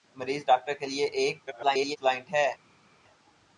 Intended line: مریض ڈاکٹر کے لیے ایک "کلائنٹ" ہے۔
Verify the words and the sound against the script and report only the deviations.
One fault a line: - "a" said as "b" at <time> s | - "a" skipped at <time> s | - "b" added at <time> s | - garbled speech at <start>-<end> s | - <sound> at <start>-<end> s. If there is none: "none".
- garbled speech at 1.5-2.0 s